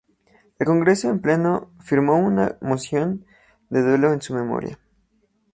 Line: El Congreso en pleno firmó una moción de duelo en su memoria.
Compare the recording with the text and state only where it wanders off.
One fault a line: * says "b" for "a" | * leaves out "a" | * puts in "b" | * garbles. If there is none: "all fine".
all fine